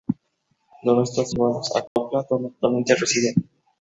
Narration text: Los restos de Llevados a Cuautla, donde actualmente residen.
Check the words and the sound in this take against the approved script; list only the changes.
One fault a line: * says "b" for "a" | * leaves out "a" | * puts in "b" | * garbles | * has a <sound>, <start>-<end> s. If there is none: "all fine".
* has a dropout, 1.9-2.0 s